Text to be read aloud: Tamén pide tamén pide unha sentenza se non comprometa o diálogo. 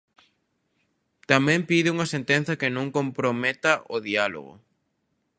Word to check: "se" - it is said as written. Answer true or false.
false